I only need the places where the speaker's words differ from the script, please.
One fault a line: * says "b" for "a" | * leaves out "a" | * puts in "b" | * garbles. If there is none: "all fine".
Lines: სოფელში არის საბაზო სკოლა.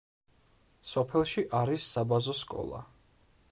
all fine